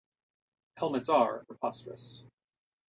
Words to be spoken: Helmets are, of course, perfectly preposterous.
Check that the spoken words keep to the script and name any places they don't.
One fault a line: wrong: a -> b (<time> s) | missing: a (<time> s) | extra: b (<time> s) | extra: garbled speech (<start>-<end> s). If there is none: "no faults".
missing: of course perfectly (1.4 s)